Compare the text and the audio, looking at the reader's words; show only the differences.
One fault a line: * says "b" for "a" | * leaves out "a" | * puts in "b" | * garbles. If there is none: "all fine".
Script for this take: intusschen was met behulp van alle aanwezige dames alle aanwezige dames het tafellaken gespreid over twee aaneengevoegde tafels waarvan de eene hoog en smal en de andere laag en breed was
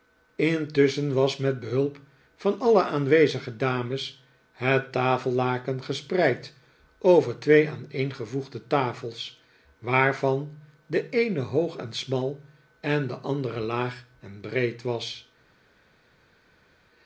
* leaves out "alle aanwezige dames"